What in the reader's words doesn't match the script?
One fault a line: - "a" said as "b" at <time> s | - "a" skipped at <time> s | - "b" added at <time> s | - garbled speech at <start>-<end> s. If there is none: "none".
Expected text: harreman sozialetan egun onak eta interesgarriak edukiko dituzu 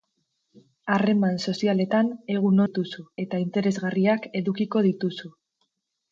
- "onak" said as "dituzu" at 2.7 s